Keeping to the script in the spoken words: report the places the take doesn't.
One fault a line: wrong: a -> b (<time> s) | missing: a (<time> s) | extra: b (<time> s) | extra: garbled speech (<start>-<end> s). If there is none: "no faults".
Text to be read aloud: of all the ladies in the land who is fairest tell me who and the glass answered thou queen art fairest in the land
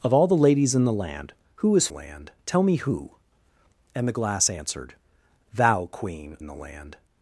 wrong: fairest -> land (1.9 s)
missing: art fairest (6.4 s)